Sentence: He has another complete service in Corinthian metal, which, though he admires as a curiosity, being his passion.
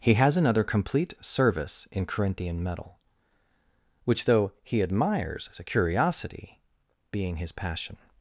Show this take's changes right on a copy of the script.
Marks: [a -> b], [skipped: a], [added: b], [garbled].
He has another complete service in Corinthian metal, which, though he admires as a curiosity, being his passion.